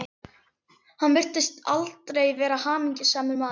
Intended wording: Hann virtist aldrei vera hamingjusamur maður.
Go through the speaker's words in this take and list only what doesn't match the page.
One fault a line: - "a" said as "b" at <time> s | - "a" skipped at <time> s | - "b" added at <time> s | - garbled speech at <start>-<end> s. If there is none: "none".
none